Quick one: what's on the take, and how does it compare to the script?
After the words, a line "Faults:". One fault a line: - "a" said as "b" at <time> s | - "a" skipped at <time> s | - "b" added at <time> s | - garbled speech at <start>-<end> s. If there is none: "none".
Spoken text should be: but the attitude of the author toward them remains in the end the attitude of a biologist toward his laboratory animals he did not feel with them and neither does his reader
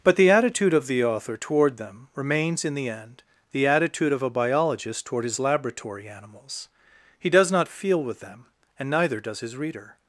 but the attitude of the author toward them remains in the end the attitude of a biologist toward his laboratory animals he does not feel with them and neither does his reader
Faults:
- "did" said as "does" at 7.3 s